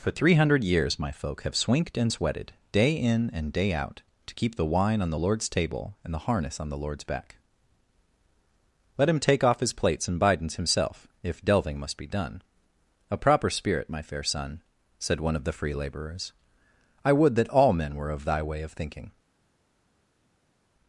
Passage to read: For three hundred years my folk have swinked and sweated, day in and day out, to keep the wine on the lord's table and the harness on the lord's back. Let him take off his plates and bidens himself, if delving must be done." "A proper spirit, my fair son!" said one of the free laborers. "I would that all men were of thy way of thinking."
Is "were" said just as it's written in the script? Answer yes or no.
yes